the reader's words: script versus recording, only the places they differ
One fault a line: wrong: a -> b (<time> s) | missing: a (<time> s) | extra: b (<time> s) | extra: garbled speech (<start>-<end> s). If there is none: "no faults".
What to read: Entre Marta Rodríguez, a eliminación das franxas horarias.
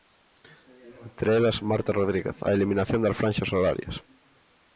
extra: elas (1.4 s)